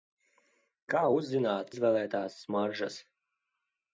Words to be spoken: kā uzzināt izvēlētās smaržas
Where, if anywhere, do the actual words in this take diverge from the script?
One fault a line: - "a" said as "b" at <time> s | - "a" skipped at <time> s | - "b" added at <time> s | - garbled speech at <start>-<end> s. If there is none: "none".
none